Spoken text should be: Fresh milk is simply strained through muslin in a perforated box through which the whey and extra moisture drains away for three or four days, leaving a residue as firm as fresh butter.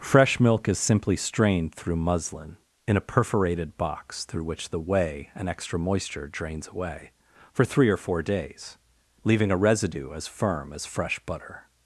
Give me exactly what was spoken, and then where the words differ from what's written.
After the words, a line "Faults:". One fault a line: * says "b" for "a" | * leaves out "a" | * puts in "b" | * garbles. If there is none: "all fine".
Fresh milk is simply strained through muslin in a perforated box through which the whey and extra moisture drains away for three or four days, leaving a residue as firm as fresh butter.
Faults:
all fine